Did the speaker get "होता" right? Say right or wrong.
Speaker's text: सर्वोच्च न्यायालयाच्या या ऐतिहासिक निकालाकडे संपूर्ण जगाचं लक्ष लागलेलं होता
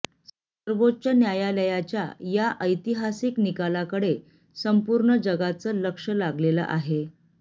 wrong